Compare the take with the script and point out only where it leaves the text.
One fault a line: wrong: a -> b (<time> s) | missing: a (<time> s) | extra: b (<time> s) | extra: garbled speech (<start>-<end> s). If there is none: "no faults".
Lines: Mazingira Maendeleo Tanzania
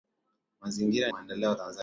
no faults